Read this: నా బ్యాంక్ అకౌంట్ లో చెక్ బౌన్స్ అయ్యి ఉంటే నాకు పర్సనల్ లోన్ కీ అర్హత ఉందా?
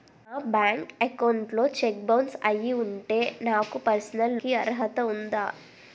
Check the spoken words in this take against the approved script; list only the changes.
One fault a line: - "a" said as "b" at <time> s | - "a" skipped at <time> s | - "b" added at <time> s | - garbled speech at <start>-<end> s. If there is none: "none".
- "లోన్" skipped at 4.4 s